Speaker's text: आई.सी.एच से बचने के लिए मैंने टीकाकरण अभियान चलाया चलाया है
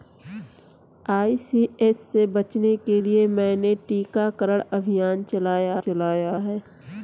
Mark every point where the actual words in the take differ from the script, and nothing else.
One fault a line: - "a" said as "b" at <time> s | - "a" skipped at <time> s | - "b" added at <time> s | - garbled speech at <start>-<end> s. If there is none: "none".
none